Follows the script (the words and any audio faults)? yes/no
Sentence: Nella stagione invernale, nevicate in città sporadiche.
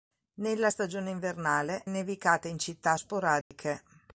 no